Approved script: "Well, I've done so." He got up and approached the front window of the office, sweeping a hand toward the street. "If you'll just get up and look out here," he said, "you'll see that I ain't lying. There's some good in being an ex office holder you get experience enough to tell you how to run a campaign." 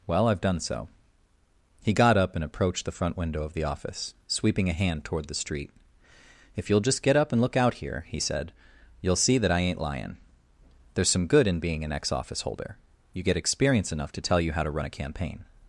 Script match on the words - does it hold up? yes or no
yes